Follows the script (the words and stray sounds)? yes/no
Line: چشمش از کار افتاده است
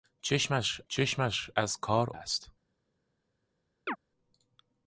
no